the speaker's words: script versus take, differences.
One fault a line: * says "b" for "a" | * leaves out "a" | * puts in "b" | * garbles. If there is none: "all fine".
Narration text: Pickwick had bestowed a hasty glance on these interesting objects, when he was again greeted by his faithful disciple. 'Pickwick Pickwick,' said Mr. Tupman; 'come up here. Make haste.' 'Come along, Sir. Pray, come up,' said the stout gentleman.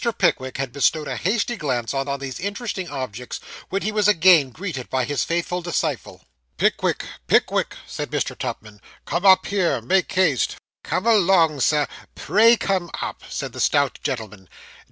* puts in "on"